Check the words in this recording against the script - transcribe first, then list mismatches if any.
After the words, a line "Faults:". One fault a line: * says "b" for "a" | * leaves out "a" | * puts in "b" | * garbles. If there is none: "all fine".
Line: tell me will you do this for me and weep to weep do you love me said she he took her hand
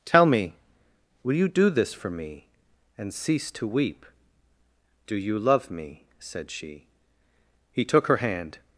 tell me will you do this for me and cease to weep do you love me said she he took her hand
Faults:
* says "cease" for "weep"